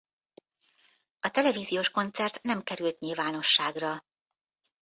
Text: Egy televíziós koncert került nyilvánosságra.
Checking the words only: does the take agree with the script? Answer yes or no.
no